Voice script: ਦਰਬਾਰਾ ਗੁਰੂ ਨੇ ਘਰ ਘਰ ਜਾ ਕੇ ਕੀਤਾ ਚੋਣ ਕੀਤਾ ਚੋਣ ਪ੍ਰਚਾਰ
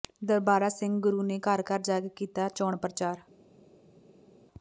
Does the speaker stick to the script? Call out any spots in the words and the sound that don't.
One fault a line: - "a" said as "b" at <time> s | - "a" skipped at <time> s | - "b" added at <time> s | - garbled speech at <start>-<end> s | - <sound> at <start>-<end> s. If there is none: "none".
- "ਸਿੰਘ" added at 0.7 s
- "ਕੀਤਾ ਚੋਣ" skipped at 2.8 s